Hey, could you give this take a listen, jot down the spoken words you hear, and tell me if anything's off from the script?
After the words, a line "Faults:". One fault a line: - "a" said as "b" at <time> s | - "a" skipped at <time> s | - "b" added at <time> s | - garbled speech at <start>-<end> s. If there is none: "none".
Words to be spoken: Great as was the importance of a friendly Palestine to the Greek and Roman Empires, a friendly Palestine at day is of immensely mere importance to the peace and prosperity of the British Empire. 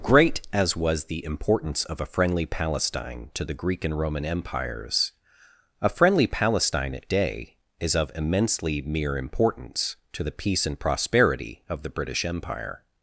Great as was the importance of a friendly Palestine to the Greek and Roman Empires, a friendly Palestine at day is of immensely mere importance to the peace and prosperity of the British Empire.
Faults:
none